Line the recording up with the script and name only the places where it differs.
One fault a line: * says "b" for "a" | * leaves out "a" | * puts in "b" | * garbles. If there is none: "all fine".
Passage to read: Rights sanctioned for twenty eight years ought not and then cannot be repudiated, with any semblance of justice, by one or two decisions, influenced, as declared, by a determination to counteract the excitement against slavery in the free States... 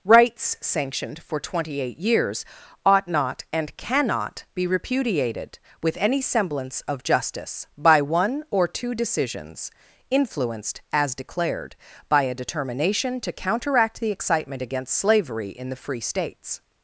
* leaves out "then"